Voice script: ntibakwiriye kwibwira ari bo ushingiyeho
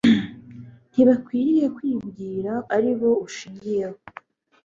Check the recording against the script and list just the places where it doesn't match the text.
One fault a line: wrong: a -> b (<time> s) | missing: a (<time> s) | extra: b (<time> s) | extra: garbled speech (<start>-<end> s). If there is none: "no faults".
no faults